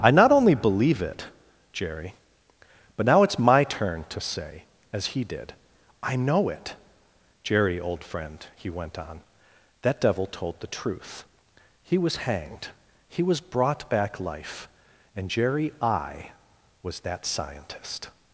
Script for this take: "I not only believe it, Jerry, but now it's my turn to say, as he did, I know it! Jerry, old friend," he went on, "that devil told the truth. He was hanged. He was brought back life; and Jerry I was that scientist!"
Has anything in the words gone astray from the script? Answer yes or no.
no